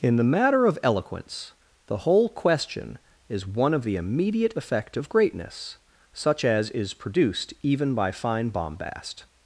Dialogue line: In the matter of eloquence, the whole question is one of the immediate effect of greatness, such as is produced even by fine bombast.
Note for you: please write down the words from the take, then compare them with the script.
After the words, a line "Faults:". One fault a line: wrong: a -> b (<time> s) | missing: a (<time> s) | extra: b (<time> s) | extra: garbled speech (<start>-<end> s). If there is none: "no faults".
In the matter of eloquence, the whole question is one of the immediate effect of greatness, such as is produced even by fine bombast.
Faults:
no faults